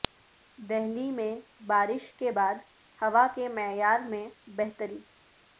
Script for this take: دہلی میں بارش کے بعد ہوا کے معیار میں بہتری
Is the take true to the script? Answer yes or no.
yes